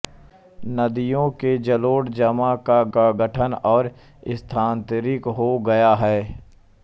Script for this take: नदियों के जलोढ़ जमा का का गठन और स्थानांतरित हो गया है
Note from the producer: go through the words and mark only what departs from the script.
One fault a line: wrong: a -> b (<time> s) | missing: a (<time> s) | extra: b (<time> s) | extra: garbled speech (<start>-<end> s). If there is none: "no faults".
no faults